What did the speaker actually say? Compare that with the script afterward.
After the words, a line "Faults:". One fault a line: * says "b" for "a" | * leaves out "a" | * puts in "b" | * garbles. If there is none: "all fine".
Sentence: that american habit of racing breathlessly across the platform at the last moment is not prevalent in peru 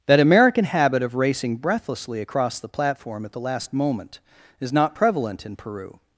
that american habit of racing breathlessly across the platform at the last moment is not prevalent in peru
Faults:
all fine